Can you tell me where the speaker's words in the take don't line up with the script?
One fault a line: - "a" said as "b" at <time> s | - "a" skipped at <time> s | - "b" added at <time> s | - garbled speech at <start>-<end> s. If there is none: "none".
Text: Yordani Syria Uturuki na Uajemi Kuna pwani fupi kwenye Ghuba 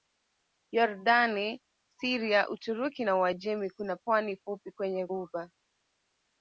none